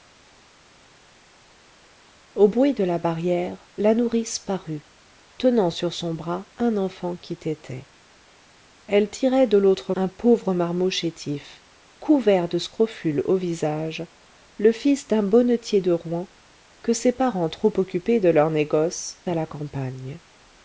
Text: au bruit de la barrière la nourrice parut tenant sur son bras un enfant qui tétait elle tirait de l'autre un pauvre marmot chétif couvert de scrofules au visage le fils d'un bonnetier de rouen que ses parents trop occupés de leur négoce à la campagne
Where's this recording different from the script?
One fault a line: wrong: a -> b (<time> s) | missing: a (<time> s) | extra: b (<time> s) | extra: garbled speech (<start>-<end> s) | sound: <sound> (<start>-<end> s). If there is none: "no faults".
no faults